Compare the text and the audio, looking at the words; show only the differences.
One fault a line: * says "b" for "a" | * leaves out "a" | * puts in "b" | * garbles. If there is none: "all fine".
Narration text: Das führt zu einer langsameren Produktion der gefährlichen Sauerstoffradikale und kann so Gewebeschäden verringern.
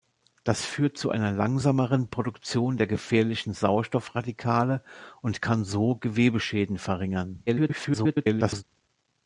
* garbles